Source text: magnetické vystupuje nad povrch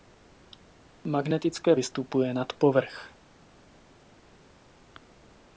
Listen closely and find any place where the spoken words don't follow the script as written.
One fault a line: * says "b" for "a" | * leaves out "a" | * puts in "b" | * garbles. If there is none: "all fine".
all fine